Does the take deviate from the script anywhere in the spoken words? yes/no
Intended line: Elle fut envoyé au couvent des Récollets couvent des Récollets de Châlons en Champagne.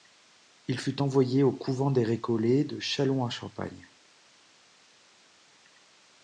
yes